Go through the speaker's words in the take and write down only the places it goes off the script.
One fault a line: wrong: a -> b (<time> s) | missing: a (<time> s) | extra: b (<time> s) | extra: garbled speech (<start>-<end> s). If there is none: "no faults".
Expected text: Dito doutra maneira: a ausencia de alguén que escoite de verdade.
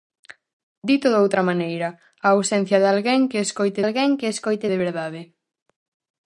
extra: alguén que escoite (3.8 s)